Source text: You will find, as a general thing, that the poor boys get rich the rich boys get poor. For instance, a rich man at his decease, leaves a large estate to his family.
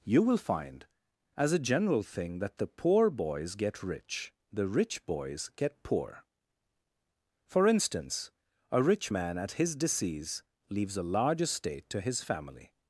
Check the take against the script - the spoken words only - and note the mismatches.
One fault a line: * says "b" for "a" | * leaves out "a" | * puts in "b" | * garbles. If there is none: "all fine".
all fine